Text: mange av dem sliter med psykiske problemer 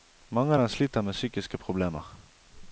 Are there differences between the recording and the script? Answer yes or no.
no